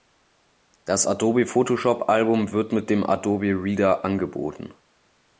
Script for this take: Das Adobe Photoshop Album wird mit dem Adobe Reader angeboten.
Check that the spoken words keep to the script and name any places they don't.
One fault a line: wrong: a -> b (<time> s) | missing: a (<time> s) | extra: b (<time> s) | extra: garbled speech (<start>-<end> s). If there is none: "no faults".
no faults